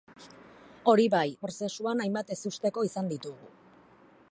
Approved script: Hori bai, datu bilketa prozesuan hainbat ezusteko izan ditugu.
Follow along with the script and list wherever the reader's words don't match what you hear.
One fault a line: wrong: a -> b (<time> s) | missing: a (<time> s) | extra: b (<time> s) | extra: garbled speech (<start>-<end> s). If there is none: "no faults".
missing: datu bilketa (1.3 s)